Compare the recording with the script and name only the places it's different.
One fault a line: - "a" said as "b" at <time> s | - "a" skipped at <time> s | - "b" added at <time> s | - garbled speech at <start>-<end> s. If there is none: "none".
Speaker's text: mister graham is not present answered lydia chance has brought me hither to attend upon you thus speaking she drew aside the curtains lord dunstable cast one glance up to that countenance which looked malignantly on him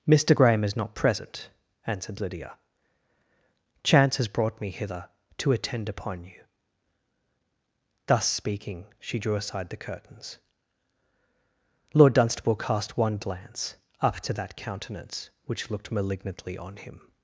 none